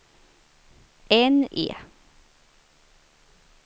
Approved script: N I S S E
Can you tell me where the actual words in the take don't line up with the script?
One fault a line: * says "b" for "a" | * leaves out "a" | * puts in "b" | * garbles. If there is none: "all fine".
* leaves out "I S S"